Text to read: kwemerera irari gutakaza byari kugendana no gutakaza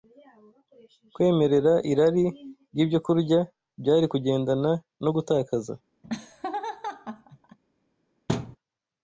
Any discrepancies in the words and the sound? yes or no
yes